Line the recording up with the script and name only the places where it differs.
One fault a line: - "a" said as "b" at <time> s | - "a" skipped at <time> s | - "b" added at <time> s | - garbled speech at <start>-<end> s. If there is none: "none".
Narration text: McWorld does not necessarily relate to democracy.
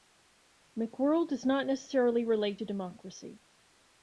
none